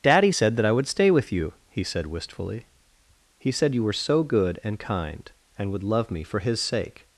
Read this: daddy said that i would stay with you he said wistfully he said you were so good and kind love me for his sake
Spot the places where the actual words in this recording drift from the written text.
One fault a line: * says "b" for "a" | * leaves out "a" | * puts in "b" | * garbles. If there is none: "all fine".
* puts in "and would"